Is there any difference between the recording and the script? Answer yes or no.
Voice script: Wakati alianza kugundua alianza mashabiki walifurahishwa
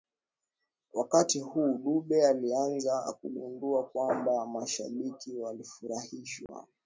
yes